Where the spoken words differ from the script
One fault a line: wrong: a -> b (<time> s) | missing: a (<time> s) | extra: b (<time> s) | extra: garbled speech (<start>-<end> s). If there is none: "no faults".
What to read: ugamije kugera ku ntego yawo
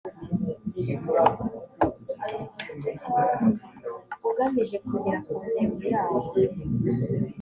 no faults